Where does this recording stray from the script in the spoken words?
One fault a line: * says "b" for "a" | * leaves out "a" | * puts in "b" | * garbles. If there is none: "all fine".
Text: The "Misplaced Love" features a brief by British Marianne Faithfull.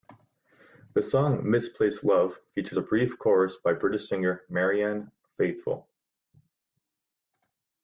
* puts in "song"
* puts in "chorus"
* puts in "singer"